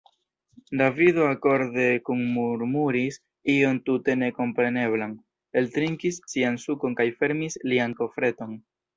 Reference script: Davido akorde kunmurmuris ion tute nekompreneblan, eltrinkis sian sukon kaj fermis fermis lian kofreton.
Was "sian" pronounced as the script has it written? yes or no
yes